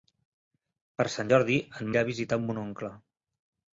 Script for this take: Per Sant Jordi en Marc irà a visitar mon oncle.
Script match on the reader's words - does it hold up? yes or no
no